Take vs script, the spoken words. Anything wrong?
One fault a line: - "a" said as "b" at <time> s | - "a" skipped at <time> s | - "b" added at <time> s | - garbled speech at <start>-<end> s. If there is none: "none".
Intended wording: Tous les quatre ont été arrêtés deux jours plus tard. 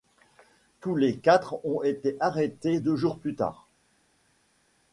none